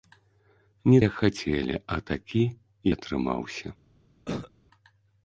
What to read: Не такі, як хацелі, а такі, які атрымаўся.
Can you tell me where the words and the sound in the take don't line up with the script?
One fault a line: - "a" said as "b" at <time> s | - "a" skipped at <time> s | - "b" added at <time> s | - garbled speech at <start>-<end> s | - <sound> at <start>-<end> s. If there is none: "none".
- "такі" skipped at 1.0 s
- "які" skipped at 2.4 s
- cough at 4.2-4.5 s